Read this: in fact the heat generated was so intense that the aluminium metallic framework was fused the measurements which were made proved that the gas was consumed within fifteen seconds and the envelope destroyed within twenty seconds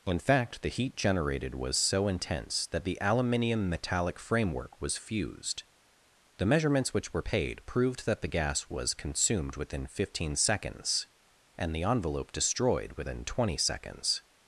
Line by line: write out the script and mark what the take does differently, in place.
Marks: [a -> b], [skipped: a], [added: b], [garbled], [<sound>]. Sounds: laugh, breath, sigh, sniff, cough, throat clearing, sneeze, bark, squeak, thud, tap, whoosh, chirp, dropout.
in fact the heat generated was so intense that the aluminium metallic framework was fused the measurements which were [made -> paid] proved that the gas was consumed within fifteen seconds and the envelope destroyed within twenty seconds